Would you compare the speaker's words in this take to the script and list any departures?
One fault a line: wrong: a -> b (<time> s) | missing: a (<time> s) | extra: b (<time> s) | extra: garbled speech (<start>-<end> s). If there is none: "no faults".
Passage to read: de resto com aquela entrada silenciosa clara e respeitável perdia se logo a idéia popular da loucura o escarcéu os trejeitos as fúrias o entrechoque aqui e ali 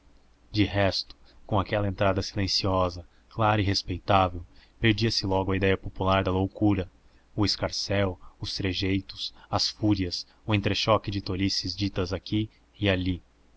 extra: de tolices ditas (11.1 s)